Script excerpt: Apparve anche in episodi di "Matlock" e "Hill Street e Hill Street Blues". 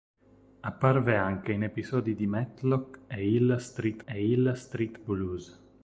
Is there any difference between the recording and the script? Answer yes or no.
no